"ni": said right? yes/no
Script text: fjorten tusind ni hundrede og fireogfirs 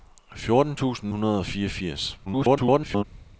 no